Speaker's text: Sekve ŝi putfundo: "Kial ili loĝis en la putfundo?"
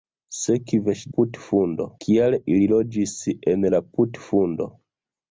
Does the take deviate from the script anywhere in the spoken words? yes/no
no